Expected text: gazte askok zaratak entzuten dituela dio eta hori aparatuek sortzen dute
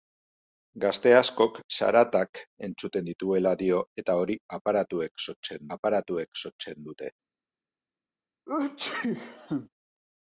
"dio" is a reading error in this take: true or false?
false